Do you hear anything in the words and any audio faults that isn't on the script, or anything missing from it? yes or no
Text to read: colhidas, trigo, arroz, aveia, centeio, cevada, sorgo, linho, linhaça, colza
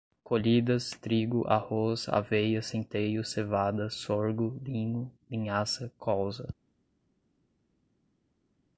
no